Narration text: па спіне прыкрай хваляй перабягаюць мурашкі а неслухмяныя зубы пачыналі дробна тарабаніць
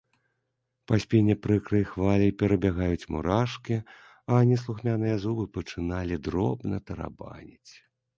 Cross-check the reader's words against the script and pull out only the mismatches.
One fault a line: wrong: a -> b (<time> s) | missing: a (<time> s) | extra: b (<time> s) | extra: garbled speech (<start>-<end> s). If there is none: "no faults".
no faults